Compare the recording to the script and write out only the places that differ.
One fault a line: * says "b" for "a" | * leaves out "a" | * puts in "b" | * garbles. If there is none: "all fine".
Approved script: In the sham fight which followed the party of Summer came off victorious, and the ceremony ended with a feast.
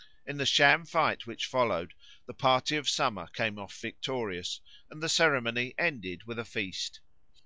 all fine